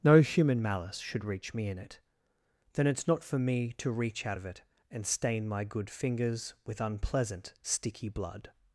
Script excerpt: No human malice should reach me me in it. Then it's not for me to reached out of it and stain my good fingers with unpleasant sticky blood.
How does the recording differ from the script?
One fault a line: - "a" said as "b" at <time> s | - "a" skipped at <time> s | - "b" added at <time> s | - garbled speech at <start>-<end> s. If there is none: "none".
- "me" skipped at 1.7 s
- "reached" said as "reach" at 3.9 s